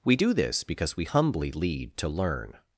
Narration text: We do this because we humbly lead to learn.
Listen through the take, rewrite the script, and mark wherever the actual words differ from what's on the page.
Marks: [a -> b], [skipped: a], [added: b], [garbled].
We do this because we humbly lead to learn.